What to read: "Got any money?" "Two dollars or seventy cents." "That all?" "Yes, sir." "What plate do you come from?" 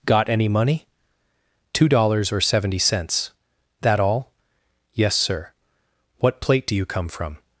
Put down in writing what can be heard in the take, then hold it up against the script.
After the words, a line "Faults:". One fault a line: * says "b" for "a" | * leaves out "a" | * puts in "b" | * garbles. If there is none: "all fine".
"Got any money?" "Two dollars or seventy cents." "That all?" "Yes, sir." "What plate do you come from?"
Faults:
all fine